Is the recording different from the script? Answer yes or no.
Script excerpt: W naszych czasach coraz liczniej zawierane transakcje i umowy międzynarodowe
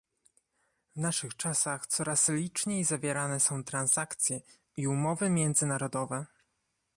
yes